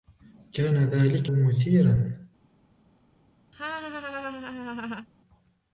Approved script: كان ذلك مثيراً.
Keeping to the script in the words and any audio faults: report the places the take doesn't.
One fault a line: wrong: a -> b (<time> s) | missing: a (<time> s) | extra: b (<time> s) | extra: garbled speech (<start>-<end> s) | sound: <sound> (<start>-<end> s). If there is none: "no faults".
sound: laugh (3.5-5.1 s)